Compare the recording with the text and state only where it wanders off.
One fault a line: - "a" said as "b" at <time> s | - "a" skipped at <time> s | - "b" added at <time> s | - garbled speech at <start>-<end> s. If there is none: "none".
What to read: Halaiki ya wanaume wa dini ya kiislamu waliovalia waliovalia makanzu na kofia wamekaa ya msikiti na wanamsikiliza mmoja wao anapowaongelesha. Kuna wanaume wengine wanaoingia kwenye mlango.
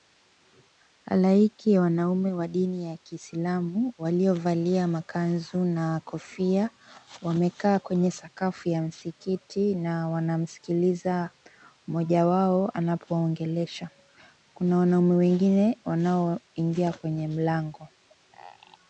- "waliovalia" skipped at 4.9 s
- "kwenye sakafu" added at 7.8 s